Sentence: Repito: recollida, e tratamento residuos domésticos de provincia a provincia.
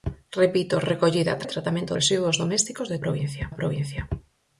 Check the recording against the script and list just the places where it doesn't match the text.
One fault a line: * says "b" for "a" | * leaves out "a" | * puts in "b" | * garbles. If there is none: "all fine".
all fine